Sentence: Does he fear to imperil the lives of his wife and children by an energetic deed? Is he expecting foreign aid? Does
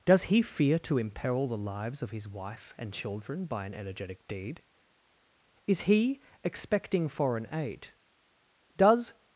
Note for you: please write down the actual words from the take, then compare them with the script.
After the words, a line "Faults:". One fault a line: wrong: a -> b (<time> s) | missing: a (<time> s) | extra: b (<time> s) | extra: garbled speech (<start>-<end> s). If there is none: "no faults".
Does he fear to imperil the lives of his wife and children by an energetic deed? Is he expecting foreign aid? Does
Faults:
no faults